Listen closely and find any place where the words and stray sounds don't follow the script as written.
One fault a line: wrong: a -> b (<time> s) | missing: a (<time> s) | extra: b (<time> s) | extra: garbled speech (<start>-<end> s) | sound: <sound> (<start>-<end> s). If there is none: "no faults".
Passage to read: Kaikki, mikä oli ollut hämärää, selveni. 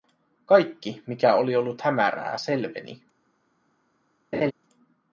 sound: laugh (4.3-4.5 s)